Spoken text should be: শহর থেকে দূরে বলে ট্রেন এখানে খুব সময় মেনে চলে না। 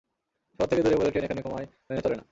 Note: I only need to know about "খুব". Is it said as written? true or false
false